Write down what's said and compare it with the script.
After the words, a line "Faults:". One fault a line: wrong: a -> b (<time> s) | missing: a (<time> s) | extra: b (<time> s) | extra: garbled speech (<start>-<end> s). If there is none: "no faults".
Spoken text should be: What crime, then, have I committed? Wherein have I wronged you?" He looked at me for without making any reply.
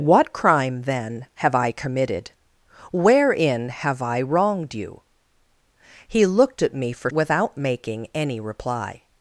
What crime, then, have I committed? Wherein have I wronged you?" He looked at me for without making any reply.
Faults:
no faults